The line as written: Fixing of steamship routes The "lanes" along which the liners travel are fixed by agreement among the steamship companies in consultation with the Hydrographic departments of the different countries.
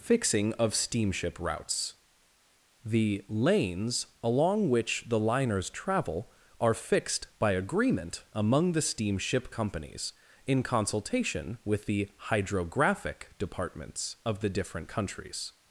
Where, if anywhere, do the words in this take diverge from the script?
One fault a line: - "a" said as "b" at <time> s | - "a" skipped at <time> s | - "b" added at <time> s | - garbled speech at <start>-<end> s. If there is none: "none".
none